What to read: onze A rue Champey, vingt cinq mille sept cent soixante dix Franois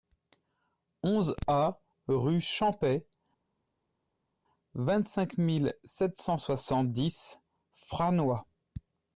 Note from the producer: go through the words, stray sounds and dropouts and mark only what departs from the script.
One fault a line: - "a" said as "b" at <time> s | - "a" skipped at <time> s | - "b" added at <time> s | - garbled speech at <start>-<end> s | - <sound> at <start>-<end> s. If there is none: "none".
none